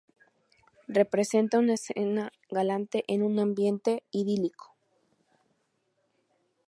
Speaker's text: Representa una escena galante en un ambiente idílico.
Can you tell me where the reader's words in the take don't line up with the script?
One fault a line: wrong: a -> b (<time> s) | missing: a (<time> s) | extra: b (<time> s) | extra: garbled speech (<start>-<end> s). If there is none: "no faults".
no faults